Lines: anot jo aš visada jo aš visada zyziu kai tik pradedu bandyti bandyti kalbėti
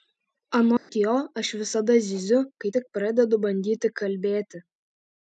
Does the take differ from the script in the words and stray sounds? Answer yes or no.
yes